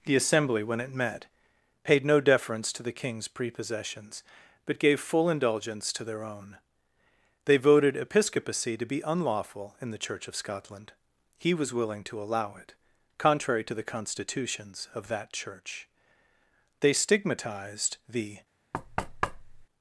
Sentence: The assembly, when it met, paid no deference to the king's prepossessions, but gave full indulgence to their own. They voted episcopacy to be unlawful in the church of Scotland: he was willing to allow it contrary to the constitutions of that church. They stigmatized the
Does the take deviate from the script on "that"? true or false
false